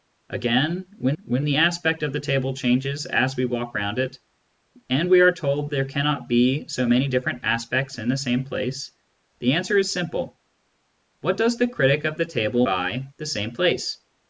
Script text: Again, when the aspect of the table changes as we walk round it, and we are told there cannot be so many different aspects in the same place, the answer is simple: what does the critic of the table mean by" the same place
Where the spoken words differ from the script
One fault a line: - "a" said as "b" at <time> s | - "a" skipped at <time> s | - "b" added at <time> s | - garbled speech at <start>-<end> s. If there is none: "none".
- "when" added at 1.2 s
- "mean" skipped at 12.7 s